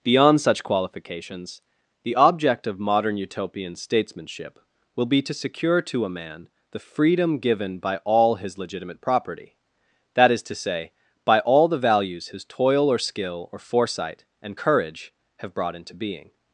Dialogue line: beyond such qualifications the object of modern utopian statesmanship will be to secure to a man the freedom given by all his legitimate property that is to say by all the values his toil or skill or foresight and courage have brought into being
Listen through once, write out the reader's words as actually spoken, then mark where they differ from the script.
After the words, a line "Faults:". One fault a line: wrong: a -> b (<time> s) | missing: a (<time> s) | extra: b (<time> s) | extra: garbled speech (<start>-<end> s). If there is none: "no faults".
beyond such qualifications the object of modern utopian statesmanship will be to secure to a man the freedom given by all his legitimate property that is to say by all the values his toil or skill or foresight and courage have brought into being
Faults:
no faults